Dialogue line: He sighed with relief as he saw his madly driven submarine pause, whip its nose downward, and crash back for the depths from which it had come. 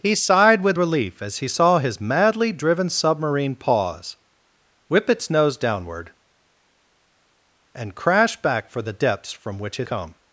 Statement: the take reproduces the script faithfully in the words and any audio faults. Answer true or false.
false